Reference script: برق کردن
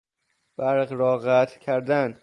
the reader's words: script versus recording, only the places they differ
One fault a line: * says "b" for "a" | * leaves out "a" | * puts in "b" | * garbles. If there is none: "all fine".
* puts in "را قطع"